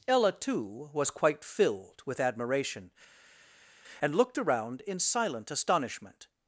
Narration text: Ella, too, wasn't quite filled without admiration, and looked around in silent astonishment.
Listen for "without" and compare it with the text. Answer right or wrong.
wrong